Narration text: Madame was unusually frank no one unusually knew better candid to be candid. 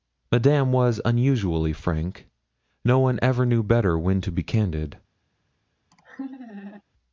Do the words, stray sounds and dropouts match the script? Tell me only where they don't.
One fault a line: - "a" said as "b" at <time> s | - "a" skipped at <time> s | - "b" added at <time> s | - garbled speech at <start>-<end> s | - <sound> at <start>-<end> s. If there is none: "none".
- "unusually" said as "ever" at 3.2 s
- "candid" said as "when" at 4.0 s
- laugh at 5.9-6.8 s